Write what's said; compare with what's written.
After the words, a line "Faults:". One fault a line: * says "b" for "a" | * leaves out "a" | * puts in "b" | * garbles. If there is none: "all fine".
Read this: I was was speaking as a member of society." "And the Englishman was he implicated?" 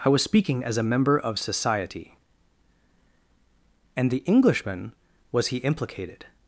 I was speaking as a member of society." "And the Englishman was he implicated?"
Faults:
* leaves out "was"